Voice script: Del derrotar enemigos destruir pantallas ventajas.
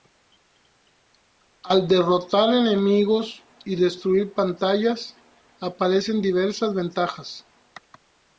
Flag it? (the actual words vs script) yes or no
yes